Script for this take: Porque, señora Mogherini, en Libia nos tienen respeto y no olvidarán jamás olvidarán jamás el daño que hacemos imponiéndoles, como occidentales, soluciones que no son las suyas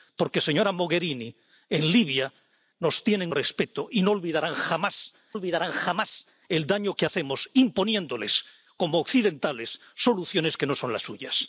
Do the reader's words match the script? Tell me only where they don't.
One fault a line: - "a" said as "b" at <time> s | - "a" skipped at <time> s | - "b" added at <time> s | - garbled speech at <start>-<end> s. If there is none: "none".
none